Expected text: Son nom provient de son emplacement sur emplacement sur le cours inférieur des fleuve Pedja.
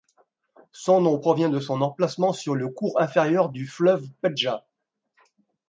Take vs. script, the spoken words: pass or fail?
fail